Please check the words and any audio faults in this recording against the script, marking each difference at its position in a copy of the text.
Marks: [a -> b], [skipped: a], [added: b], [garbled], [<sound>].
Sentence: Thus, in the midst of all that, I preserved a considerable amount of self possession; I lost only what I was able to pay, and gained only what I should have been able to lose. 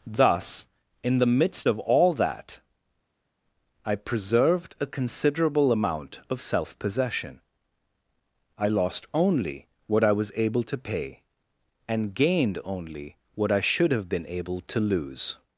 Thus, in the midst of all that, I preserved a considerable amount of self possession; I lost only what I was able to pay, and gained only what I should have been able to lose.